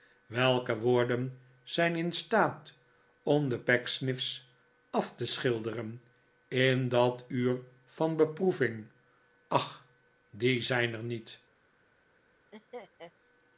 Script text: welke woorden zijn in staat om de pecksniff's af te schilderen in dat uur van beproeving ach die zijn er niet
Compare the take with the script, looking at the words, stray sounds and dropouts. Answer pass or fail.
fail